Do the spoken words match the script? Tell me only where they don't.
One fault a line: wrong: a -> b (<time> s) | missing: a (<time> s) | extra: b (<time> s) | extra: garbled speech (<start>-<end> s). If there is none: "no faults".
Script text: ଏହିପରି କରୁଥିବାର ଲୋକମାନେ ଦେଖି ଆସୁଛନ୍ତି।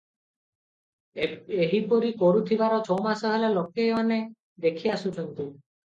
extra: ଛମାସ ହେଲା (2.8 s)